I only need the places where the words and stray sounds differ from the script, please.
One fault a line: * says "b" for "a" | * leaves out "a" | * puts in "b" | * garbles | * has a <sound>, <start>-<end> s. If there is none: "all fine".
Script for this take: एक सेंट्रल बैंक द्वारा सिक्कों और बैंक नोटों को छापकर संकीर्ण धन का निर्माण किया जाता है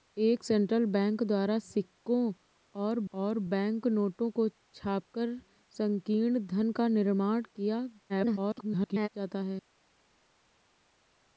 * puts in "और"
* garbles